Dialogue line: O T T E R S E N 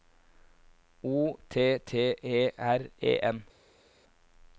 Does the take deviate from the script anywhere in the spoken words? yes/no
yes